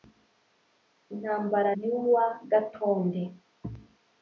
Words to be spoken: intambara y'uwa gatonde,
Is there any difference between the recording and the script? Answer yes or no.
no